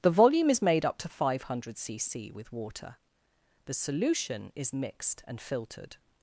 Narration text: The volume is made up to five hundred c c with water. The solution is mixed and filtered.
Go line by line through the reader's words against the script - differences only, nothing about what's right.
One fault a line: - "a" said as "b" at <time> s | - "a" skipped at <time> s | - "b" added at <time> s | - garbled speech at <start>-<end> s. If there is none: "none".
none